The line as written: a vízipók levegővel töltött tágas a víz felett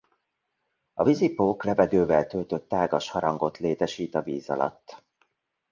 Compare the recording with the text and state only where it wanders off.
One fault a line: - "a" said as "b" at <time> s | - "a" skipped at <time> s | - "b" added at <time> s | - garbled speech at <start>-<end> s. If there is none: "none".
- "harangot létesít" added at 3.1 s
- "felett" said as "alatt" at 4.5 s